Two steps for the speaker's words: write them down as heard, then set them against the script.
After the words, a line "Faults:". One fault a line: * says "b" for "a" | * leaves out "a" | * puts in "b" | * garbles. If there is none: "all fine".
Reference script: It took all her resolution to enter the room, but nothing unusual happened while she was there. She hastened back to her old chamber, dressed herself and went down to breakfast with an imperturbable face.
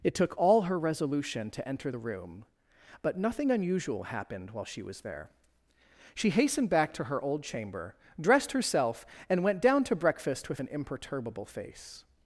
It took all her resolution to enter the room, but nothing unusual happened while she was there. She hastened back to her old chamber, dressed herself and went down to breakfast with an imperturbable face.
Faults:
all fine